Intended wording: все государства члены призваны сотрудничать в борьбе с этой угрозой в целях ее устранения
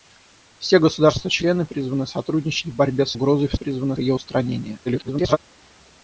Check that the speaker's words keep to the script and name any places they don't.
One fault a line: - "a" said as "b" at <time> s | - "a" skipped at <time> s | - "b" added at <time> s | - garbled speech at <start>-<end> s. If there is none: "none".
- "этой" skipped at 3.2 s
- "целях" said as "призваны" at 3.5 s
- garbled speech at 4.9-5.4 s